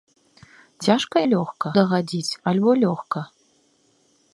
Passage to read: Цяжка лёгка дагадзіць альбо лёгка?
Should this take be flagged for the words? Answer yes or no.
no